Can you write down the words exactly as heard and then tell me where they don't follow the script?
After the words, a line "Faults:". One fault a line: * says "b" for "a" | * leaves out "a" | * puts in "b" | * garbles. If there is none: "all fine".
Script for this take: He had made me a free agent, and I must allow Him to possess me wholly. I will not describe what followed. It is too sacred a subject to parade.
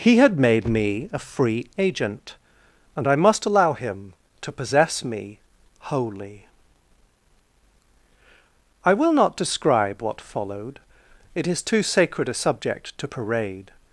He had made me a free agent, and I must allow Him to possess me wholly. I will not describe what followed. It is too sacred a subject to parade.
Faults:
all fine